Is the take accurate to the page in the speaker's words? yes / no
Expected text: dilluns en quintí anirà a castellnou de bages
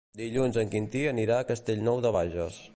yes